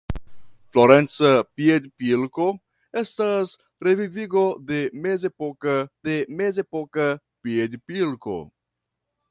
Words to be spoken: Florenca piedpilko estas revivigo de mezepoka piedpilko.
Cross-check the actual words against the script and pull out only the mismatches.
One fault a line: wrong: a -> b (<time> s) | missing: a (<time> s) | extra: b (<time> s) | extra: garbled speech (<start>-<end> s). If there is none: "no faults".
extra: de mezepoka (6.1 s)